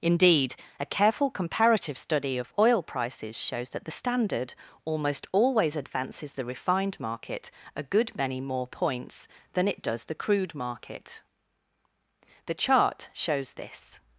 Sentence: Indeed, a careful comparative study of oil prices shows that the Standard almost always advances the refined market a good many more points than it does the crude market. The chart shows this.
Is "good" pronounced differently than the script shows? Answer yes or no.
no